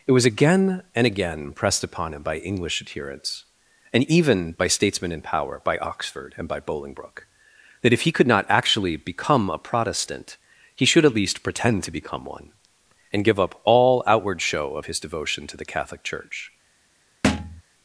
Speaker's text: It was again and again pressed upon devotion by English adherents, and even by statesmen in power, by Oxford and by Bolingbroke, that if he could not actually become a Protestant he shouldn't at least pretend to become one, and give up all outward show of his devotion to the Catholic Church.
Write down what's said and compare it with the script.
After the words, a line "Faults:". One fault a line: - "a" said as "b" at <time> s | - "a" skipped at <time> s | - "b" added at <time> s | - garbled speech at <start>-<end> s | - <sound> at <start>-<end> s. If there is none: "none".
It was again and again pressed upon him by English adherents, and even by statesmen in power, by Oxford and by Bolingbroke, that if he could not actually become a Protestant he should at least pretend to become one, and give up all outward show of his devotion to the Catholic Church.
Faults:
- "devotion" said as "him" at 2.1 s
- "shouldn't" said as "should" at 10.9 s
- thud at 17.2-17.6 s